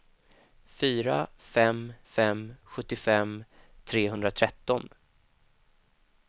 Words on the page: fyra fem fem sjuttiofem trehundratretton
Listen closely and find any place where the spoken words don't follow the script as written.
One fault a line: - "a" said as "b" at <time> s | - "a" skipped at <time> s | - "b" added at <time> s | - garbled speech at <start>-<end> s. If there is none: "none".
none